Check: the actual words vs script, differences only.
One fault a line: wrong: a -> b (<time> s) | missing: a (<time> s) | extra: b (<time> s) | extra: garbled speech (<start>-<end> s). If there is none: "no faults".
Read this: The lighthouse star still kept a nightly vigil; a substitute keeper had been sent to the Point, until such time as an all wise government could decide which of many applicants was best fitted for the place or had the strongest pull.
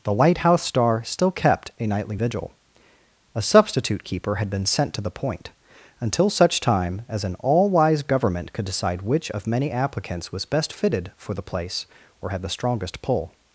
no faults